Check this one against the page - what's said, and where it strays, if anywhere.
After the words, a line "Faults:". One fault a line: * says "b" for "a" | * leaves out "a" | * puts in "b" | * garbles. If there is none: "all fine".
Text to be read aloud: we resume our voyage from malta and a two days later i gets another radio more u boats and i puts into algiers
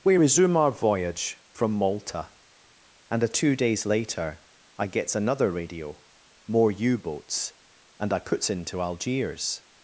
we resume our voyage from malta and a two days later i gets another radio more u boats and i puts into algiers
Faults:
all fine